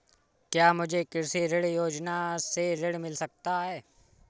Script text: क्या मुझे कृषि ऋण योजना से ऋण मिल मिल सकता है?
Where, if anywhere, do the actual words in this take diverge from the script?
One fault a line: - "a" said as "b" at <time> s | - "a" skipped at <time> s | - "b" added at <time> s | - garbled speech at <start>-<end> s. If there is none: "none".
- "मिल" skipped at 3.2 s